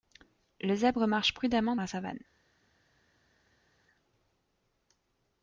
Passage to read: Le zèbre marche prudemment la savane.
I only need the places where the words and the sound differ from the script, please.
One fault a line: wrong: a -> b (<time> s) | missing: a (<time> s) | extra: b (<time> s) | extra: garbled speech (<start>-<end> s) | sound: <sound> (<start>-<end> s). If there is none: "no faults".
no faults